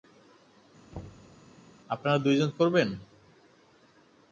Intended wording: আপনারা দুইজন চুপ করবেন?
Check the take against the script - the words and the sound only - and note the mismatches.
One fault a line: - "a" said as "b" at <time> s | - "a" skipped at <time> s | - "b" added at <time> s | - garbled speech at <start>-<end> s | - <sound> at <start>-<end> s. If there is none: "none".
- thud at 0.9-1.4 s
- "চুপ" skipped at 2.5 s